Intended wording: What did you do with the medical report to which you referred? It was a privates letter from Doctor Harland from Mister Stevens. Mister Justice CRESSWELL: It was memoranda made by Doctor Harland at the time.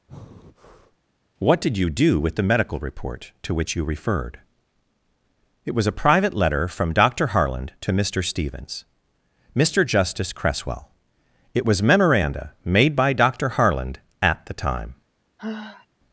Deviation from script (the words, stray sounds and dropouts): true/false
true